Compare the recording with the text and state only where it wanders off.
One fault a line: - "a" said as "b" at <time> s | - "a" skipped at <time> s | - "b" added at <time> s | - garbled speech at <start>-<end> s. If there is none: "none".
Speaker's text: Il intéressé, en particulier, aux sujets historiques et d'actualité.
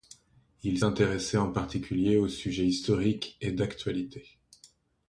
none